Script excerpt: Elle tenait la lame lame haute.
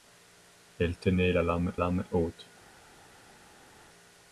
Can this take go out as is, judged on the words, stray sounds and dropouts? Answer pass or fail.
pass